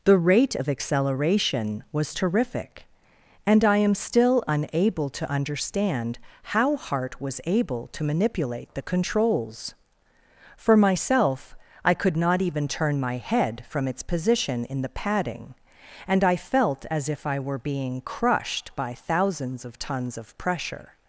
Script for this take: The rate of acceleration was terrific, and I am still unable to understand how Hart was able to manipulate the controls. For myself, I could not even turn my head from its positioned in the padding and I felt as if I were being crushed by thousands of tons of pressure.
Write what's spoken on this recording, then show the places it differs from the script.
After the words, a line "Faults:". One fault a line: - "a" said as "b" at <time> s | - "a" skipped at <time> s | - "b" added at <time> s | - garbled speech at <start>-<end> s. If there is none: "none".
The rate of acceleration was terrific, and I am still unable to understand how Hart was able to manipulate the controls. For myself, I could not even turn my head from its position in the padding and I felt as if I were being crushed by thousands of tons of pressure.
Faults:
- "positioned" said as "position" at 14.0 s